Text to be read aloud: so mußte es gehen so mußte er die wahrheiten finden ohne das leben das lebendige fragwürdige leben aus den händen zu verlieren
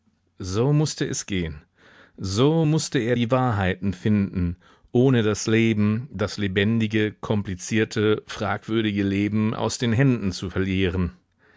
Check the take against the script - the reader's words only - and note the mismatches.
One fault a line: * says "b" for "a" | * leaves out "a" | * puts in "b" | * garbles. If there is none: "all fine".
* puts in "komplizierte"